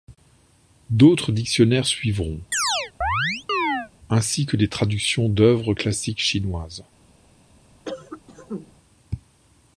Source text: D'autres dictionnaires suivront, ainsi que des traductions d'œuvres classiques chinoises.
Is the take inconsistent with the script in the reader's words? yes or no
no